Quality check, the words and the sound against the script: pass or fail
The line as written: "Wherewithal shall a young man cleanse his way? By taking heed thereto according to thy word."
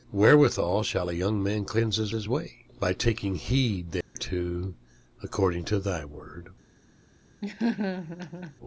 fail